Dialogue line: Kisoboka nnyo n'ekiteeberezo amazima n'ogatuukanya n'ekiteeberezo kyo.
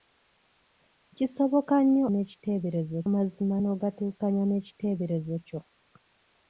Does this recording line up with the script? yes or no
yes